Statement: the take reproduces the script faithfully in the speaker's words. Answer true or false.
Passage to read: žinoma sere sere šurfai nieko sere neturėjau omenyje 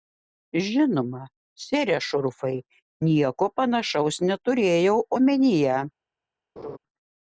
false